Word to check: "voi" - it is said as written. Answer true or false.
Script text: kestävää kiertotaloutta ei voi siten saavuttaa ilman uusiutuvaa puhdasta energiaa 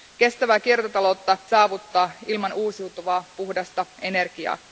false